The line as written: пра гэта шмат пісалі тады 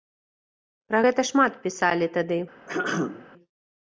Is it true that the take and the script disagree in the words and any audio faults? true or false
true